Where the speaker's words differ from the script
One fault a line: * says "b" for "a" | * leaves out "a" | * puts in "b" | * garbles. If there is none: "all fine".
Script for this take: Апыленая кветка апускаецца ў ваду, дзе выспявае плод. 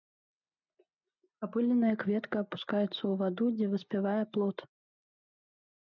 all fine